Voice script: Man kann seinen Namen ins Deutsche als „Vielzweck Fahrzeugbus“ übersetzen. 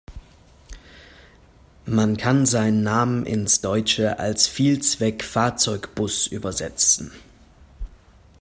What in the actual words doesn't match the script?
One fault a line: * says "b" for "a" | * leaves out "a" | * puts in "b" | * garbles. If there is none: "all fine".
all fine